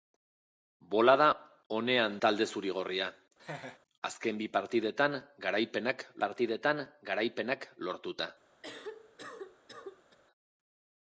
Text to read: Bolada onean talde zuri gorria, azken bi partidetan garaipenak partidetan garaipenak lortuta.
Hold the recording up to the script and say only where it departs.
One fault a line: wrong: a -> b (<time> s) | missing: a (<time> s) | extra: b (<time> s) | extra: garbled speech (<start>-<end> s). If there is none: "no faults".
no faults